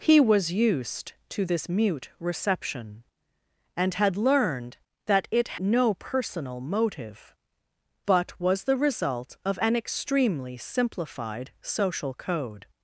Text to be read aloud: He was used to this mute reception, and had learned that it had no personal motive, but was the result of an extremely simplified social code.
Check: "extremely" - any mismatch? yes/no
no